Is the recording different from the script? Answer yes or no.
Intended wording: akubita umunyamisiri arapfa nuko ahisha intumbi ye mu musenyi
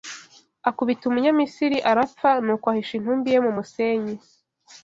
no